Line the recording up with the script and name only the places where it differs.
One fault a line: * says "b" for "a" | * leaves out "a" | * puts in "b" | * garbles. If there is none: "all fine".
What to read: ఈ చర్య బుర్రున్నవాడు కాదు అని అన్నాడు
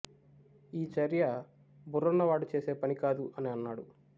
* puts in "చేసే పని"